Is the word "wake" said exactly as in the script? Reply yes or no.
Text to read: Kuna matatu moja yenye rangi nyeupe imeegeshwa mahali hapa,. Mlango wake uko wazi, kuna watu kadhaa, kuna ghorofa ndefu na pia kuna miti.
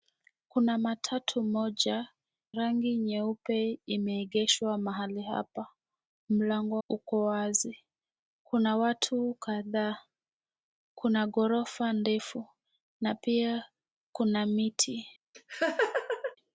no